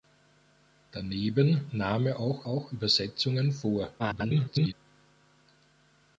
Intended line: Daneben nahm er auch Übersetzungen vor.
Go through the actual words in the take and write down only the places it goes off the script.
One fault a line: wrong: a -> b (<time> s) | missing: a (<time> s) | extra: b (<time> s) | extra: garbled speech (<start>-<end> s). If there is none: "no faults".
extra: auch (2.5 s)
extra: garbled speech (4.0-4.7 s)